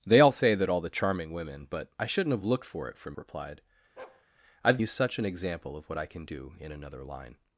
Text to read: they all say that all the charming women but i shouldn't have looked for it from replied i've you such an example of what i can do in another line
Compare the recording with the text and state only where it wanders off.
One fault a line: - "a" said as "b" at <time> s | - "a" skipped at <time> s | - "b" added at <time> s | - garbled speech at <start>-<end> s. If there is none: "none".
none